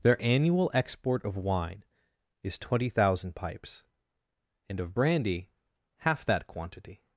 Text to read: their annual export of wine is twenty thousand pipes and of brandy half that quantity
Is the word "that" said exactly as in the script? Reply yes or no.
yes